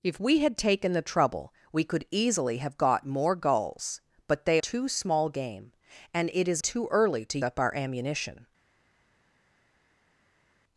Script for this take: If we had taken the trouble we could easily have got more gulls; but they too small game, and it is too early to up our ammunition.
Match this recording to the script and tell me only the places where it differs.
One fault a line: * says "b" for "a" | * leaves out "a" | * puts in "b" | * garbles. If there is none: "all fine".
all fine